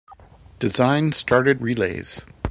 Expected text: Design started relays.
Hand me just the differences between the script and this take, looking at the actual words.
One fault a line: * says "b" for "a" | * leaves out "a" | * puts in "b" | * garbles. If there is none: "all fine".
all fine